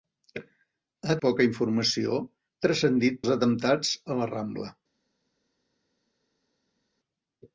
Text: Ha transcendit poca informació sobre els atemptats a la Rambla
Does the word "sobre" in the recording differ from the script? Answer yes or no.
yes